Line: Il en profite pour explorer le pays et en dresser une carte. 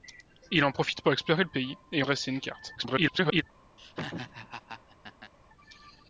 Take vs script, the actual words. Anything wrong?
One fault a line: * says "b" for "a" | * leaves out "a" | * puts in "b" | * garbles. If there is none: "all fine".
* leaves out "en"
* garbles